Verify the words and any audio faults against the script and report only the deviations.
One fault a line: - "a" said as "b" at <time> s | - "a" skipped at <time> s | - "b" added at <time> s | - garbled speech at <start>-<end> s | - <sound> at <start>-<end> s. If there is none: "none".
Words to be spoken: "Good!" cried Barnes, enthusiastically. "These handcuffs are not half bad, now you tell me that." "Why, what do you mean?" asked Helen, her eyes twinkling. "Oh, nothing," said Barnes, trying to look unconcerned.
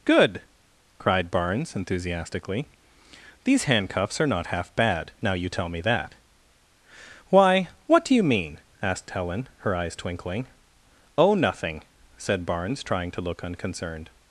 none